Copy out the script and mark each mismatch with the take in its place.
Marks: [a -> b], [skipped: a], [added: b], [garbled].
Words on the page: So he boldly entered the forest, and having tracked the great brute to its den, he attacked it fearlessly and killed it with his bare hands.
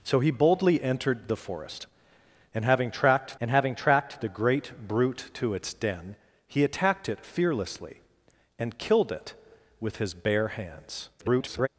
So he boldly entered the forest, and having tracked [added: and having tracked] the great brute to its den, he attacked it fearlessly and killed it with his bare hands. [garbled]